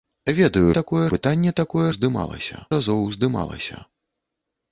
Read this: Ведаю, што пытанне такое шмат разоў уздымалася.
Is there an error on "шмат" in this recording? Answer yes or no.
yes